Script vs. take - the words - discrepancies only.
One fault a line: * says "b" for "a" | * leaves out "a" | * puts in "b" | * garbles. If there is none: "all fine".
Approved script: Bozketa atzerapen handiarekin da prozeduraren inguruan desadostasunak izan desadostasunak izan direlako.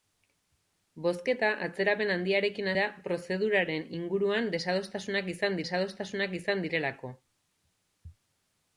all fine